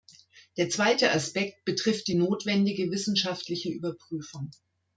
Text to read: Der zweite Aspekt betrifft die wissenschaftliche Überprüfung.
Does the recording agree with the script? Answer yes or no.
no